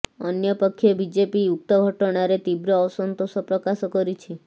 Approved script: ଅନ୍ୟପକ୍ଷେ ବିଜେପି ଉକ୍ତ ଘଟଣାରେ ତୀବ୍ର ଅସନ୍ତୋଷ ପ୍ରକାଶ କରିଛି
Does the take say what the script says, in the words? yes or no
yes